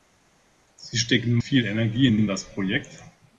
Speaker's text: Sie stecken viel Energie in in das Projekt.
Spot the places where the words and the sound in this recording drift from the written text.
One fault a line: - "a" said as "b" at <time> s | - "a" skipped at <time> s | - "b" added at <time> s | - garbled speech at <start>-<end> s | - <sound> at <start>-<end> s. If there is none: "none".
none